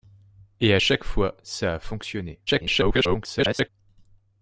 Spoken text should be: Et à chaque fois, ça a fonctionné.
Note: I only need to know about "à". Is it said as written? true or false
true